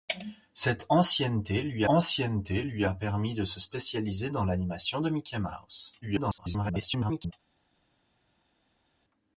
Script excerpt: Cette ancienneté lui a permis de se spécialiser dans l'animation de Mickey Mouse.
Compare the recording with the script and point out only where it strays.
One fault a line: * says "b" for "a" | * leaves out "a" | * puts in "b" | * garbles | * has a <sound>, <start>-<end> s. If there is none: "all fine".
* puts in "ancienneté lui"
* garbles